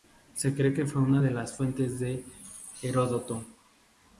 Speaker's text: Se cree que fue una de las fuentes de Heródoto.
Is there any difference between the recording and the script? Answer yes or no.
no